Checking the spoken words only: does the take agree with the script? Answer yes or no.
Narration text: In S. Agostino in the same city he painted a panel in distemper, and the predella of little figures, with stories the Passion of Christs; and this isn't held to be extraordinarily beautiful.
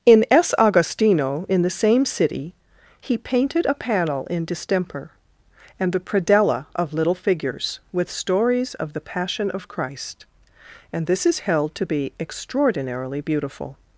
no